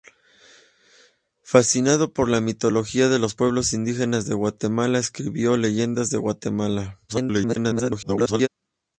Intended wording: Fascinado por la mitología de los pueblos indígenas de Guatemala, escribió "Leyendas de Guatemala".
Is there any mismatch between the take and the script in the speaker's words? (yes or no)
yes